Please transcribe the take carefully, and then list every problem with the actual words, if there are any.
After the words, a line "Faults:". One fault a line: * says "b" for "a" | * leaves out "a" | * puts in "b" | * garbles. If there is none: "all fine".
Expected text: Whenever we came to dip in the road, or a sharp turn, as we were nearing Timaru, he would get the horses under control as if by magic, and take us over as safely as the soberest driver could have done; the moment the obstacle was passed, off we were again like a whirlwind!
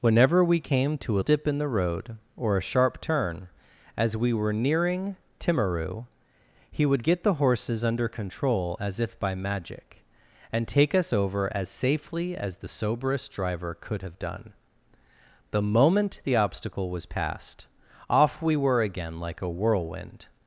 Whenever we came to dip in the road, or a sharp turn, as we were nearing Timaru, he would get the horses under control as if by magic, and take us over as safely as the soberest driver could have done; the moment the obstacle was passed, off we were again like a whirlwind!
Faults:
all fine